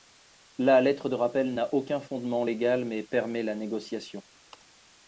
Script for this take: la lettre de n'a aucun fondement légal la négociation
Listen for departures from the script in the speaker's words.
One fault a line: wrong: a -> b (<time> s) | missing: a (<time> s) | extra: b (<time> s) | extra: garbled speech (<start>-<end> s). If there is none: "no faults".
extra: rappel (1.1 s)
extra: mais permet (2.8 s)